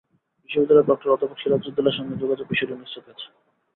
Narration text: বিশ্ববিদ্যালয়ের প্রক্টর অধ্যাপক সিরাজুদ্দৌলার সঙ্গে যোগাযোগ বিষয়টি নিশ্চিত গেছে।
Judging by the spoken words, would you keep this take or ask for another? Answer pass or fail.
pass